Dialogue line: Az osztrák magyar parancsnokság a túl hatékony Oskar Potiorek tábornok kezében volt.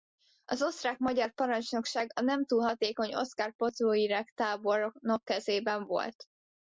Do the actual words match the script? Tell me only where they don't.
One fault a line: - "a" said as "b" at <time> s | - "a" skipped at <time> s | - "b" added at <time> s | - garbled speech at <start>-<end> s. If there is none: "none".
- "nem" added at 2.2 s